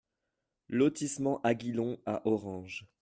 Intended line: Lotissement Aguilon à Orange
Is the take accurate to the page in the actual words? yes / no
yes